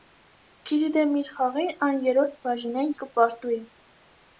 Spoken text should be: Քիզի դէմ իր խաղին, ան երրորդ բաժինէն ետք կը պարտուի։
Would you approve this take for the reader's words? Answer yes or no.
no